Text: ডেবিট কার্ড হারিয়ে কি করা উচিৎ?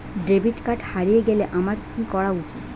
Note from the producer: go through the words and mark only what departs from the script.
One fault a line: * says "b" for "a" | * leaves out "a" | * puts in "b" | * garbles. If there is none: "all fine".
* puts in "গেলে আমার"